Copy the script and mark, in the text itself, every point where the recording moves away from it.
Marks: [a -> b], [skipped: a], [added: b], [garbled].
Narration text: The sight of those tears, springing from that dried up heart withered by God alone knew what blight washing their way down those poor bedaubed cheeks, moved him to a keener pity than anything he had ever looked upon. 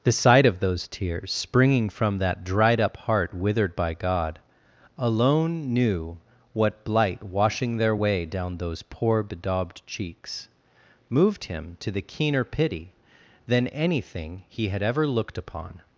The sight of those tears, springing from that dried up heart withered by God alone knew what blight washing their way down those poor bedaubed cheeks, moved him to [a -> the] keener pity than anything he had ever looked upon.